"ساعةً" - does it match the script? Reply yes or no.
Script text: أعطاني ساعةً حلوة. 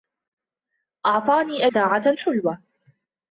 yes